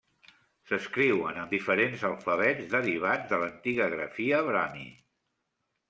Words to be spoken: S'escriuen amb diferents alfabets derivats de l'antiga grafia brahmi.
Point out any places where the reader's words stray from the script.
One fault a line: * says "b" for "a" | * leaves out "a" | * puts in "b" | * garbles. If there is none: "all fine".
all fine